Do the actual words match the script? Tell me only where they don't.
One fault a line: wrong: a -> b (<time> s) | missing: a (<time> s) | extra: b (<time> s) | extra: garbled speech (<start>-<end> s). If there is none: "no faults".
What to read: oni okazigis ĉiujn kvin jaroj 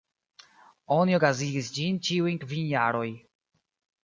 extra: ĝin (1.8 s)